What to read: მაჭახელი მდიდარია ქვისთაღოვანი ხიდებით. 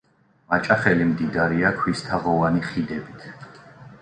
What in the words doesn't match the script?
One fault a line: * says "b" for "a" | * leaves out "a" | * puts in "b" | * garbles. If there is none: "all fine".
all fine